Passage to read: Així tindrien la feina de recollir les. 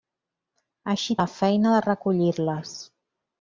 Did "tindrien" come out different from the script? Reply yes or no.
yes